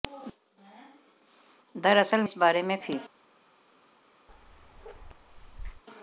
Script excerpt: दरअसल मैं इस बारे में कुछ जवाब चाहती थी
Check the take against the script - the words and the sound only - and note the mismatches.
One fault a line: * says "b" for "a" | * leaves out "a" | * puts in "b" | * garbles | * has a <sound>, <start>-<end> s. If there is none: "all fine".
* leaves out "मैं"
* leaves out "कुछ जवाब चाहती"
* has a bark, 4.3-5.8 s